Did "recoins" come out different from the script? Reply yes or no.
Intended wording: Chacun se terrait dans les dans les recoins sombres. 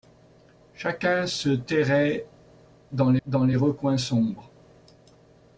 no